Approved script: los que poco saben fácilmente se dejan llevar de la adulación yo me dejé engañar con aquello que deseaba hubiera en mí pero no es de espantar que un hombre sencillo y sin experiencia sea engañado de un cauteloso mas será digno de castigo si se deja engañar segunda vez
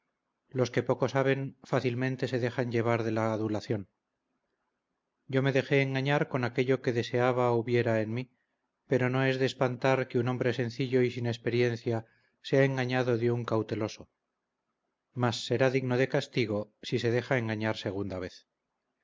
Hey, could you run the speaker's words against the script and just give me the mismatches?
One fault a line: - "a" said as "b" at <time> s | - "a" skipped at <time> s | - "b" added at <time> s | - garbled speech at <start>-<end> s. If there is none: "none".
none